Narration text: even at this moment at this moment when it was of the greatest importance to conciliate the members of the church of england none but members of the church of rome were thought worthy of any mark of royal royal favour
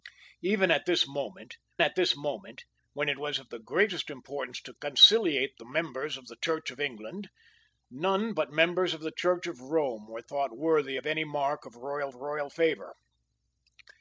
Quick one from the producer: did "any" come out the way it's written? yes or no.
yes